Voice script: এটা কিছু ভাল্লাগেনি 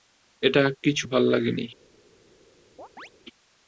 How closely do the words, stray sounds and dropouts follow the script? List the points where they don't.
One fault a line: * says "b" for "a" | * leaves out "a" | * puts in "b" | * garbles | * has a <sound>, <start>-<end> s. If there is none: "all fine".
* has a chirp, 2.8-3.1 s